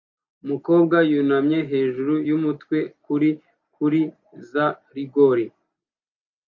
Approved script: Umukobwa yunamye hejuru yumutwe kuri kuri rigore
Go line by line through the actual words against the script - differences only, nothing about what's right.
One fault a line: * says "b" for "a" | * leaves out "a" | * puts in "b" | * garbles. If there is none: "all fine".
* puts in "za"